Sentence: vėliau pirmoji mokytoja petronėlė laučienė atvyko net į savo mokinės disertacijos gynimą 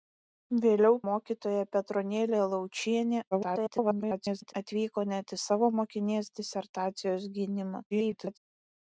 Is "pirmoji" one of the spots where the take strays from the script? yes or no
yes